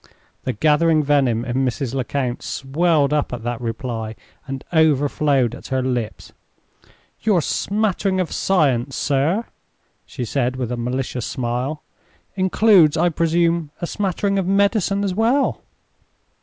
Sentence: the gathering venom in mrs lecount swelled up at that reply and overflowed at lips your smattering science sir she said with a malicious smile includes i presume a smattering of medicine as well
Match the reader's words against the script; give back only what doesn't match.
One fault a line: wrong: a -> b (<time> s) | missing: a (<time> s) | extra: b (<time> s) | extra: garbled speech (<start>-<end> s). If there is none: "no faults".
extra: her (5.7 s)
extra: of (8.2 s)